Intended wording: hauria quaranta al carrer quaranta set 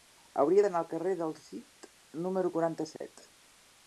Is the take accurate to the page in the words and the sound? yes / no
no